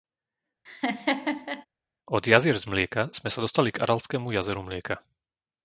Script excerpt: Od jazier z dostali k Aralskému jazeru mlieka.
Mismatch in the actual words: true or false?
true